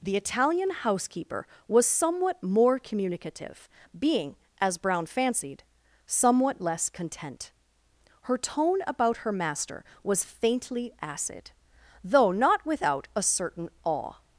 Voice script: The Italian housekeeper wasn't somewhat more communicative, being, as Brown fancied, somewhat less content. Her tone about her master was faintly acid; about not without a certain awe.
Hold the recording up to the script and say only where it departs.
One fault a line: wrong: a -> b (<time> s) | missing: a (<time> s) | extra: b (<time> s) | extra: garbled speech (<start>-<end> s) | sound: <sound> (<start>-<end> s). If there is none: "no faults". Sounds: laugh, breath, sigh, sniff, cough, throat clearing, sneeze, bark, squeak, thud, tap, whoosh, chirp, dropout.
wrong: wasn't -> was (1.7 s)
wrong: about -> though (12.0 s)